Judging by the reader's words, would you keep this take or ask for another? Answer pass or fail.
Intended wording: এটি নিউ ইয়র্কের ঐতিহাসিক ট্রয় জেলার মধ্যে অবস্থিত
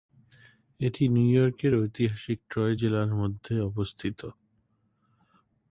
pass